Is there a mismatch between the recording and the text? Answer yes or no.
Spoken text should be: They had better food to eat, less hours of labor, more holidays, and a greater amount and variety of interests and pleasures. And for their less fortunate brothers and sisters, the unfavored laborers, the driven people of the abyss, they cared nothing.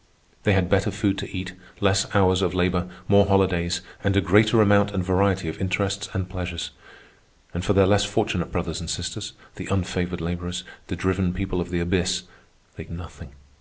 yes